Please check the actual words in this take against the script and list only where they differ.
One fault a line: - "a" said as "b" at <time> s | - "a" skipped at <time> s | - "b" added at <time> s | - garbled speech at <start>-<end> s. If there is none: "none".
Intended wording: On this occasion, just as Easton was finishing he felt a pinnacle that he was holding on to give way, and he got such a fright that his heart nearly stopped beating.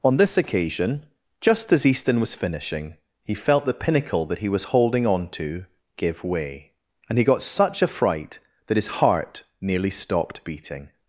- "a" said as "the" at 3.7 s